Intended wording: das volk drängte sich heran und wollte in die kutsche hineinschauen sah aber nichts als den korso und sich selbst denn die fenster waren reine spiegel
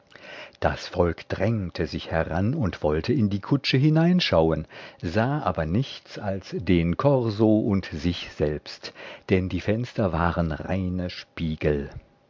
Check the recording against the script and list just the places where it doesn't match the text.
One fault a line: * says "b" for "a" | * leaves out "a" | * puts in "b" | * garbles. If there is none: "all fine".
all fine